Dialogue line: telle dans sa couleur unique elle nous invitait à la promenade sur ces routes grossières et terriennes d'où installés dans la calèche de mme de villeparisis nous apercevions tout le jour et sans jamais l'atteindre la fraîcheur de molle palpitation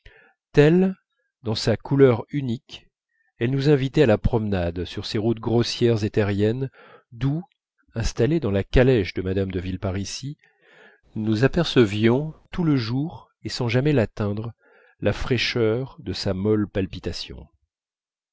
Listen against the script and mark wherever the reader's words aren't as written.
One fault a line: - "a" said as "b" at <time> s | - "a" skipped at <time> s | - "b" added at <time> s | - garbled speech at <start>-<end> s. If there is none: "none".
- "sa" added at 16.1 s